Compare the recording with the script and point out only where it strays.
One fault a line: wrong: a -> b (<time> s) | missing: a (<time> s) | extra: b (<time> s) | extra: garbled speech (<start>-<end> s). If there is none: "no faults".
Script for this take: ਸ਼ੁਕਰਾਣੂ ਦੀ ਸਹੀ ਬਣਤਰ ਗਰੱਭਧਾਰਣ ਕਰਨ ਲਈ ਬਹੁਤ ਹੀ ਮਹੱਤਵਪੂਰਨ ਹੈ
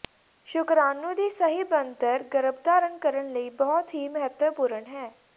no faults